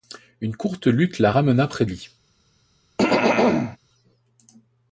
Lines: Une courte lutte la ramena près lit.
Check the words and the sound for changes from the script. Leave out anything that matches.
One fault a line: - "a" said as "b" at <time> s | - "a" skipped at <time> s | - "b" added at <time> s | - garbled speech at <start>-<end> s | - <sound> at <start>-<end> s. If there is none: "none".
- throat clearing at 3.0-3.8 s